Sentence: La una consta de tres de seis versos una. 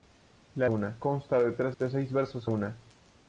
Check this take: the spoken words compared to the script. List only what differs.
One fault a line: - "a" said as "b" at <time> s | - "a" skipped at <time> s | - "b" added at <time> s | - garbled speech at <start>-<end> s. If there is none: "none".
none